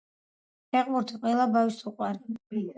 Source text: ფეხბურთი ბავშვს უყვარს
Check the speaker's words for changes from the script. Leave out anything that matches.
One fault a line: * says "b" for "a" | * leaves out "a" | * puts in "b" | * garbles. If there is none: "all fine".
* puts in "ყველა"